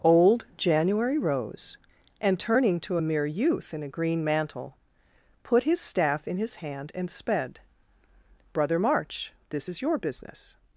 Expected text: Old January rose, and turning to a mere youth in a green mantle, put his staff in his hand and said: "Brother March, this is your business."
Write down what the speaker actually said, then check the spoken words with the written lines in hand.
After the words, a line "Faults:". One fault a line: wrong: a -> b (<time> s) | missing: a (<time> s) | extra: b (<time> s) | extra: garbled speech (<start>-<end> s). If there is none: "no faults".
Old January rose, and turning to a mere youth in a green mantle, put his staff in his hand and sped: "Brother March, this is your business."
Faults:
wrong: said -> sped (7.1 s)